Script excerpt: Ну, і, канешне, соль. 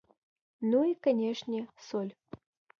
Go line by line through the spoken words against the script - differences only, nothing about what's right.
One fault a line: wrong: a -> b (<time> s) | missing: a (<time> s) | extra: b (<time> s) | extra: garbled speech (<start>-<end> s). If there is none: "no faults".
no faults